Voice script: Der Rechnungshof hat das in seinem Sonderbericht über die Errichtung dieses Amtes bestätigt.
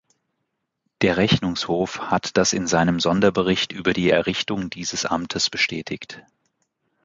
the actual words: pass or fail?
pass